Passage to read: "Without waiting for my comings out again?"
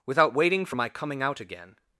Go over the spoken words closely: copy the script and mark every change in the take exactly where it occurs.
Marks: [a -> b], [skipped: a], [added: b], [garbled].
"Without waiting for my [comings -> coming] out again?"